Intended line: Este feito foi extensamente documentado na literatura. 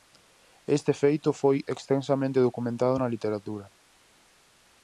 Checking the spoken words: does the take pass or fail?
pass